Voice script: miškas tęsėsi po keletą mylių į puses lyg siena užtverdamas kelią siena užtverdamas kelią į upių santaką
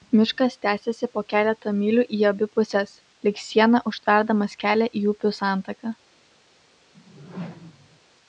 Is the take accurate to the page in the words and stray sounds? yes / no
no